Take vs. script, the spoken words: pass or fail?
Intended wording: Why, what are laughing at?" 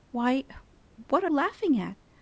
pass